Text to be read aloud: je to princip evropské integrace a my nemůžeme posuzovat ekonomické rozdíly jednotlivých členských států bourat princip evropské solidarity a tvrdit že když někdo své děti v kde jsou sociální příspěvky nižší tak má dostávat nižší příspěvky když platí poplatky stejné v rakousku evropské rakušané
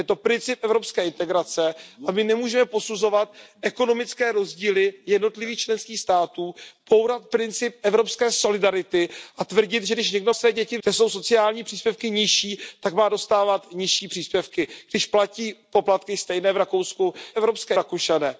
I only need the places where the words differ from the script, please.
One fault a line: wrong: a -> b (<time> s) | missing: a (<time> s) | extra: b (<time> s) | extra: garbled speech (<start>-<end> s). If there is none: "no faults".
no faults